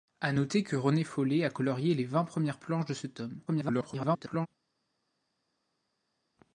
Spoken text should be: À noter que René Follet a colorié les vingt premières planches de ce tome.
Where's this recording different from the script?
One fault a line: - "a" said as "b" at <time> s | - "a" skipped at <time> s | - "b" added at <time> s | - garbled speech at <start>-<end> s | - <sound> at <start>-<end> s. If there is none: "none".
- garbled speech at 3.5-4.5 s